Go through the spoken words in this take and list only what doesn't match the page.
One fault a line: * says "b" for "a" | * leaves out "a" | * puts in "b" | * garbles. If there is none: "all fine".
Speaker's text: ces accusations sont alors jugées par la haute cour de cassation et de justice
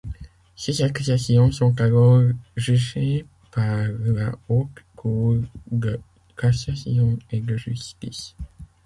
all fine